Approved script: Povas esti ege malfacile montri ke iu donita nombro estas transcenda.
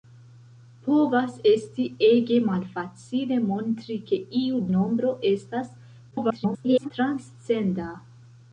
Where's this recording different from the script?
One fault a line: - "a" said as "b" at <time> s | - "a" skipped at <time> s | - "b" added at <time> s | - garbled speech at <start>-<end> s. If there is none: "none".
- "donita" skipped at 4.6 s
- garbled speech at 6.1-6.9 s